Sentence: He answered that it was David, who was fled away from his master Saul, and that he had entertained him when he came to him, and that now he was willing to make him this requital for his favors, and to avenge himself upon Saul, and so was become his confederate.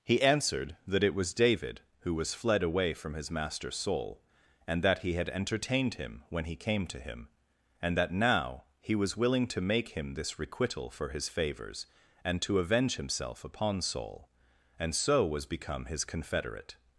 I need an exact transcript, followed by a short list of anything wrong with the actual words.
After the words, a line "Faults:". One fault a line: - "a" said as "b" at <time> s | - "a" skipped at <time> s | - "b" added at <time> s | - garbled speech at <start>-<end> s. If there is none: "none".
He answered that it was David, who was fled away from his master Saul, and that he had entertained him when he came to him, and that now he was willing to make him this requital for his favors, and to avenge himself upon Saul, and so was become his confederate.
Faults:
none